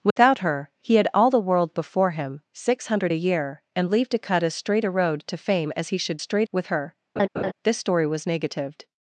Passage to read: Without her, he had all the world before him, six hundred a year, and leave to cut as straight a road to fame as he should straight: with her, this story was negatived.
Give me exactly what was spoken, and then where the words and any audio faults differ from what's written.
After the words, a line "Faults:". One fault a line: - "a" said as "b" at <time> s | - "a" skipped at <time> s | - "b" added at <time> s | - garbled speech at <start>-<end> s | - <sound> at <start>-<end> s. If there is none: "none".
Without her, he had all the world before him, six hundred a year, and leave to cut as straight a road to fame as he should straight: with her, this story was negatived.
Faults:
- dropout at 0.1-0.2 s
- laugh at 7.2-7.5 s